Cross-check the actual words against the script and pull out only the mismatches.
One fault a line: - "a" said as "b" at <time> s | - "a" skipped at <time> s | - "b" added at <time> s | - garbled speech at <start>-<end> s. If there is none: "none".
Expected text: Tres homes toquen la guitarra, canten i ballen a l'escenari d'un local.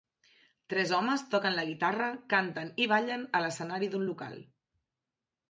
none